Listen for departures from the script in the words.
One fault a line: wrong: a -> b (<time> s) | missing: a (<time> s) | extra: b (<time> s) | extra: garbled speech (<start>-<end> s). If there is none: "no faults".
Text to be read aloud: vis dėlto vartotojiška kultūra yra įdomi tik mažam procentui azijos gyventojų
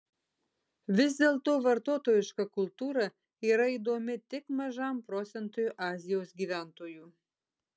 no faults